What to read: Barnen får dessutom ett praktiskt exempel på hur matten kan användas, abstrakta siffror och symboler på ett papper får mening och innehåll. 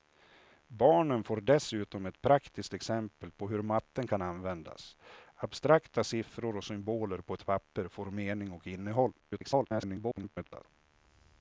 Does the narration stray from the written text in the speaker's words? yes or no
yes